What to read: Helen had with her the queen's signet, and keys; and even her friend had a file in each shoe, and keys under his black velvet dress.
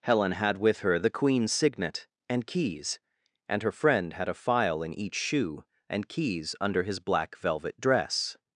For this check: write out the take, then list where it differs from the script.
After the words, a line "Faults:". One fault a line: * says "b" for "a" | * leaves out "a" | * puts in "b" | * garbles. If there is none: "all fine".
Helen had with her the queen's signet, and keys; and her friend had a file in each shoe, and keys under his black velvet dress.
Faults:
* leaves out "even"